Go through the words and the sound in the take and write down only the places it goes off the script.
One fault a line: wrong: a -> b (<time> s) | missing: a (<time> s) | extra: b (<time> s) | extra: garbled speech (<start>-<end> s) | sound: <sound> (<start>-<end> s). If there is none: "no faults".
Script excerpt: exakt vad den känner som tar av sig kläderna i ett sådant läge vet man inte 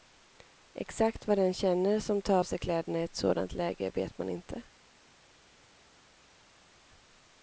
no faults